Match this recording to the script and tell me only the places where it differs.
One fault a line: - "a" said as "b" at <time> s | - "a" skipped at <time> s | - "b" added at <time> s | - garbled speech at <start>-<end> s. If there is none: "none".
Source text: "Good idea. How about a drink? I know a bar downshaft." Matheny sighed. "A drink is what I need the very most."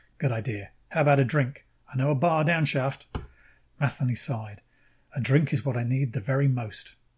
none